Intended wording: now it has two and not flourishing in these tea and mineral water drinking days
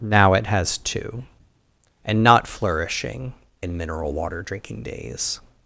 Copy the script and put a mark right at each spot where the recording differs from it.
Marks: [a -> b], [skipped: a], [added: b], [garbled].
now it has two and not flourishing [skipped: in these tea] and mineral water drinking days